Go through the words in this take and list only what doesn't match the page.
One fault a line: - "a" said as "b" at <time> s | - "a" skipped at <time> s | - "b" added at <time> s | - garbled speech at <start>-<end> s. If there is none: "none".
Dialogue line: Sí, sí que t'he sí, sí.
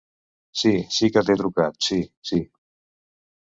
- "trucat" added at 1.4 s